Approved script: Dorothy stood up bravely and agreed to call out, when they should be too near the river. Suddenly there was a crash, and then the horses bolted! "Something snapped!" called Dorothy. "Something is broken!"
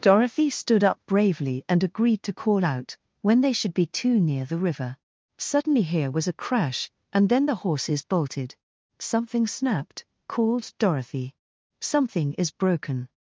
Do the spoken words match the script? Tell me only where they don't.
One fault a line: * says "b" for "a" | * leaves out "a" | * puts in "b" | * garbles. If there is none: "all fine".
* says "here" for "there"